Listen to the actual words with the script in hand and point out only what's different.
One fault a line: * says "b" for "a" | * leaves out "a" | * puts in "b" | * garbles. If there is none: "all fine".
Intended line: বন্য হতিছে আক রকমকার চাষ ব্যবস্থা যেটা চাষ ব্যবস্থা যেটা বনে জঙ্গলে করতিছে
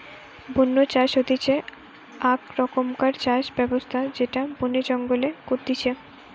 * puts in "চাষ"
* leaves out "চাষ ব্যবস্থা যেটা"